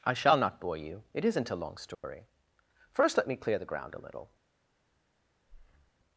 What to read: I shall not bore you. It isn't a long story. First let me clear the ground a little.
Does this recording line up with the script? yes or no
yes